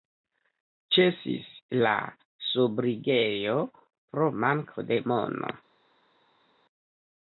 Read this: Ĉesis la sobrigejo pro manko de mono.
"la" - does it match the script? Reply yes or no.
yes